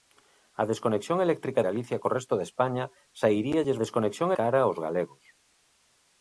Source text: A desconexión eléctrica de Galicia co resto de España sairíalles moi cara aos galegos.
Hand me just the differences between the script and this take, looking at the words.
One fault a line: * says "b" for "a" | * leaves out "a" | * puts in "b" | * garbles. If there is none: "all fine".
* leaves out "de"
* says "desconexión" for "moi"